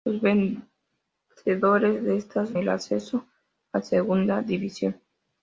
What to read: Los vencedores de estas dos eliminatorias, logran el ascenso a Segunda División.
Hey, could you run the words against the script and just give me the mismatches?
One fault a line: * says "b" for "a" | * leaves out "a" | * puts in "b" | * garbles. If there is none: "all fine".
* leaves out "dos eliminatorias logran"